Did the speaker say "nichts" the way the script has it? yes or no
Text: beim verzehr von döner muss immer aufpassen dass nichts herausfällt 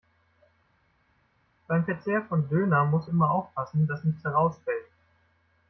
yes